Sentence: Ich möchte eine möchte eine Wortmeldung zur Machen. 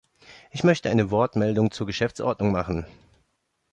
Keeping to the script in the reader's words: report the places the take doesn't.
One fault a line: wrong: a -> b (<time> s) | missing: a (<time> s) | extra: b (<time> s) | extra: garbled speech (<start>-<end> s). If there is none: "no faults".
missing: möchte eine (1.1 s)
extra: Geschäftsordnung (1.9 s)